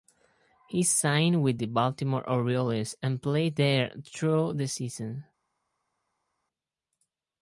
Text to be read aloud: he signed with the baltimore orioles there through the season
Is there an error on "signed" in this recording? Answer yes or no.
no